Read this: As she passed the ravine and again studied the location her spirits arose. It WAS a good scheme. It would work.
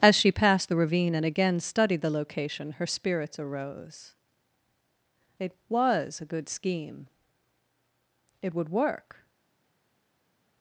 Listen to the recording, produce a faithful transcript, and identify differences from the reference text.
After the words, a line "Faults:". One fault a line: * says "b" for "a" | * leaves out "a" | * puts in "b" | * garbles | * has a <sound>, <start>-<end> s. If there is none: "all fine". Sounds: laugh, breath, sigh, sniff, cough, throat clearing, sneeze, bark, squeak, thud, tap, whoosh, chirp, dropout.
As she passed the ravine and again studied the location her spirits arose. It WAS a good scheme. It would work.
Faults:
all fine